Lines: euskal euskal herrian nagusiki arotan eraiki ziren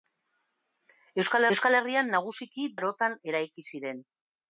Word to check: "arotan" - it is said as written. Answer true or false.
true